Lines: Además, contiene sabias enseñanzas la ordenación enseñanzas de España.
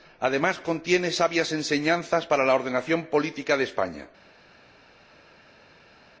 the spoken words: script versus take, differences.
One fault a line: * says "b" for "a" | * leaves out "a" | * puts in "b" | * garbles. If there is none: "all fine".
* puts in "para"
* says "política" for "enseñanzas"